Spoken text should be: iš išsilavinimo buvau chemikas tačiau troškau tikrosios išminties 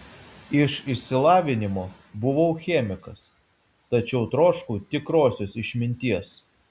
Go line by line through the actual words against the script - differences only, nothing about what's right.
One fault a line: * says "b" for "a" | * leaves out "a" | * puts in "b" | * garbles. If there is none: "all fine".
all fine